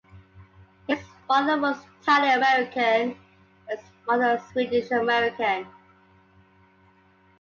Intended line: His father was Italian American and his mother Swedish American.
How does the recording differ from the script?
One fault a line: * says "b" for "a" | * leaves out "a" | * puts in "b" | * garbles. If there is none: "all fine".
all fine